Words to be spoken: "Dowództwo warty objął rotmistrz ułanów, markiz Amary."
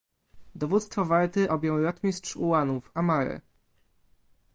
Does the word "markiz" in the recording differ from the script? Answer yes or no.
yes